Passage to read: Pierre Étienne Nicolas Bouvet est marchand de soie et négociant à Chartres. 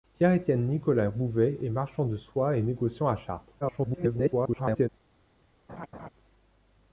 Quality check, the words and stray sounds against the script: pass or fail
fail